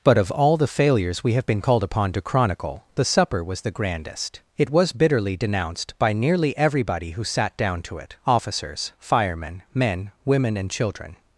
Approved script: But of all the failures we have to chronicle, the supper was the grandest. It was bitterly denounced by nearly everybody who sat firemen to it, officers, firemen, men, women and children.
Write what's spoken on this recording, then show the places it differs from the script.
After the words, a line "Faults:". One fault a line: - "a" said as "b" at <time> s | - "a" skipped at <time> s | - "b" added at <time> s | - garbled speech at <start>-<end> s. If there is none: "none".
But of all the failures we have been called upon to chronicle, the supper was the grandest. It was bitterly denounced by nearly everybody who sat down to it, officers, firemen, men, women and children.
Faults:
- "been called upon" added at 1.4 s
- "firemen" said as "down" at 7.6 s